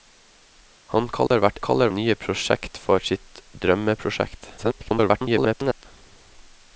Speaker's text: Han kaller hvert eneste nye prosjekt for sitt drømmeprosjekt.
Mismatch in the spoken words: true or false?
true